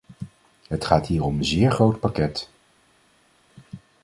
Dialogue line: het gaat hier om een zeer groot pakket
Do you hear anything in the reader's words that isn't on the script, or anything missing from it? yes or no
no